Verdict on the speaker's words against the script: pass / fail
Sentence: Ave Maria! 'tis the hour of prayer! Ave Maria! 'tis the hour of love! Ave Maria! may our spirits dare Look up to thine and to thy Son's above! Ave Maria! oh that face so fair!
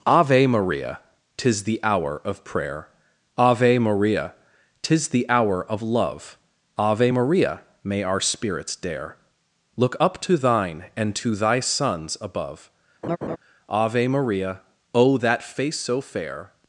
pass